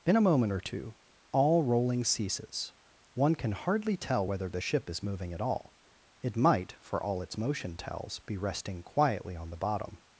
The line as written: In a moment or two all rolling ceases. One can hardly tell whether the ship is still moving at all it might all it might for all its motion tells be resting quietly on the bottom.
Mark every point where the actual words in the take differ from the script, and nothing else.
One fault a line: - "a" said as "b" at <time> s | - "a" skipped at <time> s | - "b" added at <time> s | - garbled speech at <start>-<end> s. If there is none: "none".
- "still" skipped at 5.0 s
- "all it might" skipped at 6.8 s